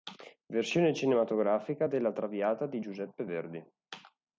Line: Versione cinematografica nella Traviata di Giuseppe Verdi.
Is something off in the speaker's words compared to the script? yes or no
yes